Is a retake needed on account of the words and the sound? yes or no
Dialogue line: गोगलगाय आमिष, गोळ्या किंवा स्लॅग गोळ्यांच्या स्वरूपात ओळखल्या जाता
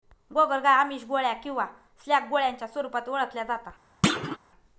yes